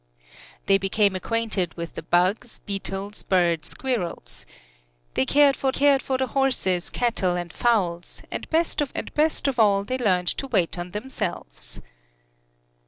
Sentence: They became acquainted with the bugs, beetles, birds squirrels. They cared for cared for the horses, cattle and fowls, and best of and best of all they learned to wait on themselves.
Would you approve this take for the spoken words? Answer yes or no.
yes